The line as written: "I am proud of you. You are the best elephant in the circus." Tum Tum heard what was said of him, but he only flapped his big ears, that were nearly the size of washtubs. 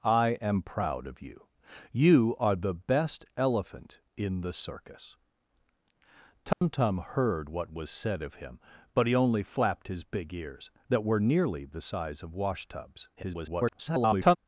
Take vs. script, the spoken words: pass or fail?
fail